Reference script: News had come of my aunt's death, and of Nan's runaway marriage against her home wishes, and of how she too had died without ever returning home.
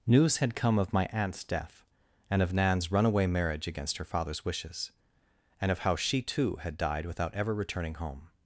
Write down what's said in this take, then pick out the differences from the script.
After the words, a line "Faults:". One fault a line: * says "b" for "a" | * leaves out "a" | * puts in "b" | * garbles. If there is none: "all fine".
News had come of my aunt's death, and of Nan's runaway marriage against her father's wishes, and of how she too had died without ever returning home.
Faults:
* says "father's" for "home"